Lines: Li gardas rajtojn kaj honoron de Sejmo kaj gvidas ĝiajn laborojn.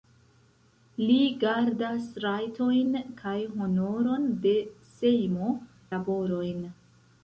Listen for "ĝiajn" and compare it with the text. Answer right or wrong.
wrong